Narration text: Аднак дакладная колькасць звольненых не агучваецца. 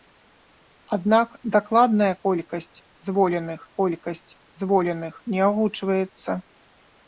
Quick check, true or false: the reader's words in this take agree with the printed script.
false